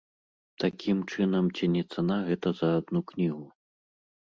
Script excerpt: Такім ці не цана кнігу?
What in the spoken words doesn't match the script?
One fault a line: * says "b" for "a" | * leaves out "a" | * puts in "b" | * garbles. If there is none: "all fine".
* puts in "чынам"
* puts in "гэта за адну"